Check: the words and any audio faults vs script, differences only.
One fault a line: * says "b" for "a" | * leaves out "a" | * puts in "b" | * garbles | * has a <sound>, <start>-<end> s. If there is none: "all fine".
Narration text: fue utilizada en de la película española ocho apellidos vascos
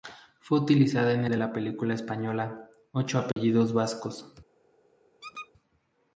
* has a dropout, 3.3-3.4 s
* has a squeak, 5.2-5.5 s